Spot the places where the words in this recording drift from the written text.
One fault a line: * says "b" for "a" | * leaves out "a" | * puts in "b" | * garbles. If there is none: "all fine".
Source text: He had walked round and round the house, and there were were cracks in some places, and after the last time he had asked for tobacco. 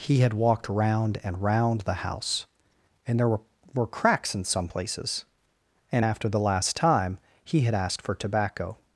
all fine